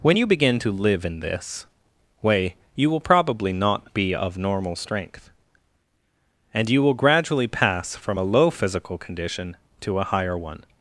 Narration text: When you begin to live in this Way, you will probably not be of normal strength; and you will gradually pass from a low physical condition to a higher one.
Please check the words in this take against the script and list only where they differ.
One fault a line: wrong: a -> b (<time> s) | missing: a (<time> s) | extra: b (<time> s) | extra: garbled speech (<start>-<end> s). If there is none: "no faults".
no faults